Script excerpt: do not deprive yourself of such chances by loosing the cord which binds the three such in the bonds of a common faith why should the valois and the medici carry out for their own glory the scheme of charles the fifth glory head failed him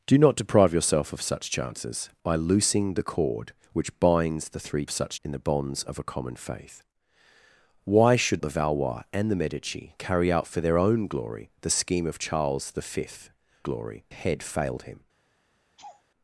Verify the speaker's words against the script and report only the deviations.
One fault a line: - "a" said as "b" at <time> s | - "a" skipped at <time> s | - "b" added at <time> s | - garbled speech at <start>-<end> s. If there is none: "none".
none